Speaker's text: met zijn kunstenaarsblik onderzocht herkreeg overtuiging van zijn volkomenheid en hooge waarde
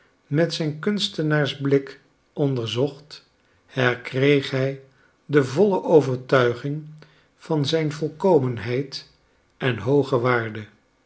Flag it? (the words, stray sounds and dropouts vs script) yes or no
yes